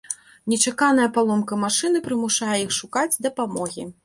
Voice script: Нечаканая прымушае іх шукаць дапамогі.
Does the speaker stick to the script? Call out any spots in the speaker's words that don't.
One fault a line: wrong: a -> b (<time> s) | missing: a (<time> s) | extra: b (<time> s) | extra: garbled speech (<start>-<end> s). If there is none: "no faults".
extra: паломка машыны (1.2 s)